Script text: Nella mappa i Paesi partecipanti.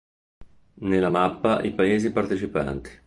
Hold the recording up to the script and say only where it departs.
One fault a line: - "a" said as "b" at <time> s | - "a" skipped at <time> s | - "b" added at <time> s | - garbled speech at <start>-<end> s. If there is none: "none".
none